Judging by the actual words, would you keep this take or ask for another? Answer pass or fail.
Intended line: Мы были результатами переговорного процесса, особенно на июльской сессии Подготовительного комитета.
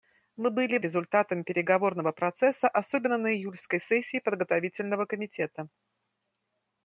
pass